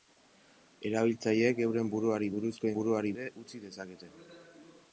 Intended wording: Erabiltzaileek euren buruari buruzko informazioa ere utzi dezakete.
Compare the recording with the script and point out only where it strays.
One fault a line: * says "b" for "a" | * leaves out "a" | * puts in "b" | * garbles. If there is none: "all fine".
* says "buruari" for "informazioa"